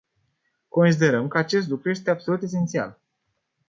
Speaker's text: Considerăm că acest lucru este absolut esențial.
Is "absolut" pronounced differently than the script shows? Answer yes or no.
no